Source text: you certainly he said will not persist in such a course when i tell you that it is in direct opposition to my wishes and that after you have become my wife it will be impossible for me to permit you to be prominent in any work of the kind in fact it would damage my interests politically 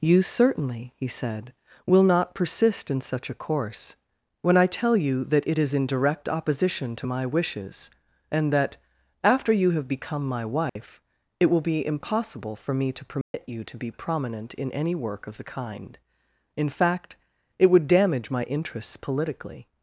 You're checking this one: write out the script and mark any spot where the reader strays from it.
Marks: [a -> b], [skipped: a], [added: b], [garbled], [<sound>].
you certainly he said will not persist in such a course when i tell you that it is in direct opposition to my wishes and that after you have become my wife [dropout] it will be impossible for me to permit [dropout] you to be prominent in any work of the kind in fact it would damage my interests politically